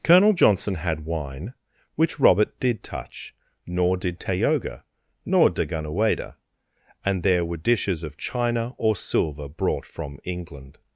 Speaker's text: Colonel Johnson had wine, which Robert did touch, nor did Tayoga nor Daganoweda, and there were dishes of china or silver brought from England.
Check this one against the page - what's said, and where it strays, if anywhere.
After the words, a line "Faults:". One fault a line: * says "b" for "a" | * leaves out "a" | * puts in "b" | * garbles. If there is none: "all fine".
Colonel Johnson had wine, which Robert did touch, nor did Tayoga nor Daganoweda, and there were dishes of china or silver brought from England.
Faults:
all fine